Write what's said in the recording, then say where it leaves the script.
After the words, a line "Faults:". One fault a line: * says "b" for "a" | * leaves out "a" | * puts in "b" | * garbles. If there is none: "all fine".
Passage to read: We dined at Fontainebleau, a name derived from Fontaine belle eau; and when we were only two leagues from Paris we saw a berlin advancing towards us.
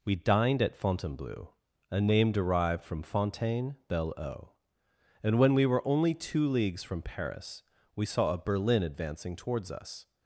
We dined at Fontainebleau, a name derived from Fontaine belle eau; and when we were only two leagues from Paris we saw a berlin advancing towards us.
Faults:
all fine